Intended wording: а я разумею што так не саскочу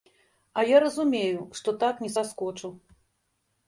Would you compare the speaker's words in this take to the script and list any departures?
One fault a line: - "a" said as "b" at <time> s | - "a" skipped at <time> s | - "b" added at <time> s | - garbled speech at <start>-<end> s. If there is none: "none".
none